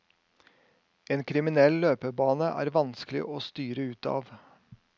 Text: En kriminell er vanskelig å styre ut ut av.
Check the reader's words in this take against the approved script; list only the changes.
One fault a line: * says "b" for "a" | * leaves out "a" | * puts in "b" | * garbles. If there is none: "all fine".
* puts in "løpebane"
* leaves out "ut"